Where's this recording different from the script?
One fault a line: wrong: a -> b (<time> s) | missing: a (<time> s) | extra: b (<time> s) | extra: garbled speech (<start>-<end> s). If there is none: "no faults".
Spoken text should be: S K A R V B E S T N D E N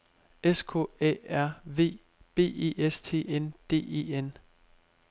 no faults